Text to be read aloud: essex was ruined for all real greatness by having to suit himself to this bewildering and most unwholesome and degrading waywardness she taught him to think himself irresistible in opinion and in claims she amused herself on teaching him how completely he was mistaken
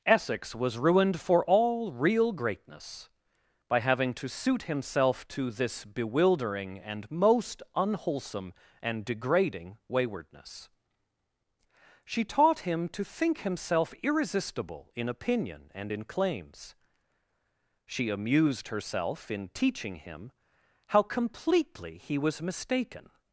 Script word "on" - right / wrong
wrong